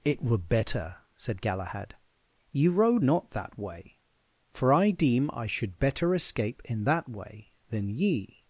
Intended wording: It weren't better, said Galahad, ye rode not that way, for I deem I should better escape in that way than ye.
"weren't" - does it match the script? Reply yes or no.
no